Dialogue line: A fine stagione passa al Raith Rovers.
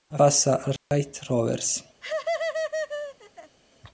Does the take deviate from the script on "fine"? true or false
true